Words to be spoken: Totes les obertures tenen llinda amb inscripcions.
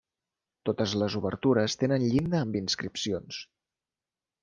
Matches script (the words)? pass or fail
pass